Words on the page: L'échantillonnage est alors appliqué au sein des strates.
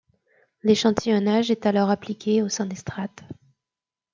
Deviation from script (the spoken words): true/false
false